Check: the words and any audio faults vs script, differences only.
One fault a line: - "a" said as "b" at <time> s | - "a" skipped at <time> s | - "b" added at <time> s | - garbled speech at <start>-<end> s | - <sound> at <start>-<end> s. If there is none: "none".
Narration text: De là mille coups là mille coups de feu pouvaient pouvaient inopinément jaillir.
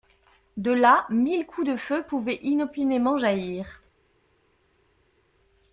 - "là mille coups" skipped at 1.7 s
- "pouvaient" skipped at 2.4 s